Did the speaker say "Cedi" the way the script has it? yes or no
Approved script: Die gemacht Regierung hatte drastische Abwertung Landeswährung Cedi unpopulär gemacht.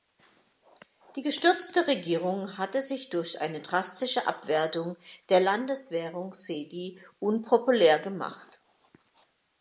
yes